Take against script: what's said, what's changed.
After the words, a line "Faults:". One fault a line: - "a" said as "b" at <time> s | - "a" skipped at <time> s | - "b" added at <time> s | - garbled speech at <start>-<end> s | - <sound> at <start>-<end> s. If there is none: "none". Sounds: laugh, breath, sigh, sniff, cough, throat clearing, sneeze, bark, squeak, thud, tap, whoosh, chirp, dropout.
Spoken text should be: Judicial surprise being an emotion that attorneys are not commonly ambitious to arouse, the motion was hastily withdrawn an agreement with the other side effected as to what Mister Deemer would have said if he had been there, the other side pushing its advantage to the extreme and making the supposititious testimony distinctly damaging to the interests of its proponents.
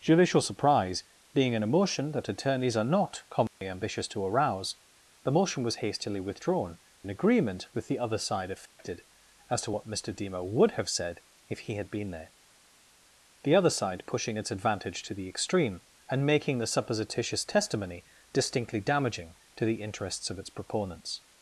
Judicial surprise being an emotion that attorneys are not commonly ambitious to arouse, the motion was hastily withdrawn an agreement with the other side effected as to what Mister Deemer would have said if he had been there, the other side pushing its advantage to the extreme and making the supposititious testimony distinctly damaging to the interests of its proponents.
Faults:
- dropout at 3.5-3.6 s
- dropout at 8.7-8.8 s